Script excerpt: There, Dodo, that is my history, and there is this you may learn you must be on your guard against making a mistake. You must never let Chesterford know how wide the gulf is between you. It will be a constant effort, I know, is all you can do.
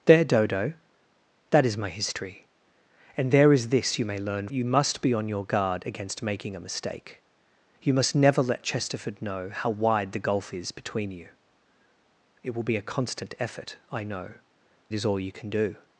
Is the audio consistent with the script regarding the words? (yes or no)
yes